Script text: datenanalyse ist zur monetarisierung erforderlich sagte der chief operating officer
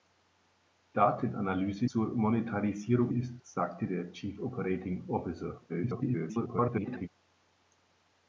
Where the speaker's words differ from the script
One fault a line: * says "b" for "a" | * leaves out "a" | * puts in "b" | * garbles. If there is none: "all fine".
* leaves out "ist"
* says "ist" for "erforderlich"
* garbles